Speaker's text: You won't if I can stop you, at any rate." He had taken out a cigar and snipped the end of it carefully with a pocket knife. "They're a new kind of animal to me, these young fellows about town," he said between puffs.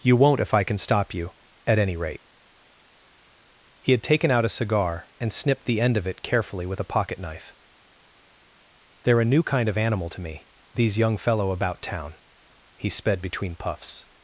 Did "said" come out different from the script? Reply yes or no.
yes